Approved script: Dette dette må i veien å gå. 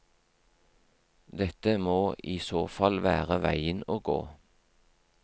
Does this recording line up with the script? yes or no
no